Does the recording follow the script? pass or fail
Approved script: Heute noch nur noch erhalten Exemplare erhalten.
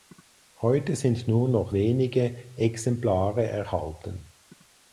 fail